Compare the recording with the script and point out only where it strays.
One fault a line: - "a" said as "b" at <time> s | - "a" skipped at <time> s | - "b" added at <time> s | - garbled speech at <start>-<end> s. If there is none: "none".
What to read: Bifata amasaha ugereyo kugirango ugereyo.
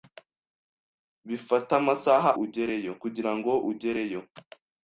none